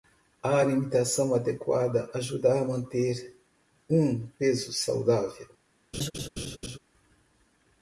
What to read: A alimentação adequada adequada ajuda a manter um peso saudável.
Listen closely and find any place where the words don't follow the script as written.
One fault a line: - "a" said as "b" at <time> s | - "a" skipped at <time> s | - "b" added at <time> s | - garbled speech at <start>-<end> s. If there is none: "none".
- "adequada" skipped at 2.1 s